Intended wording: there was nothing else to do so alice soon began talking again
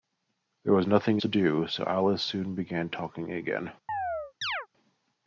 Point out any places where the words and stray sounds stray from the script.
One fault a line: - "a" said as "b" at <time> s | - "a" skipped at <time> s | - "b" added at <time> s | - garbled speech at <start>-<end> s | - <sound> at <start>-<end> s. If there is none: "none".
- "else" skipped at 1.2 s
- chirp at 3.9-4.7 s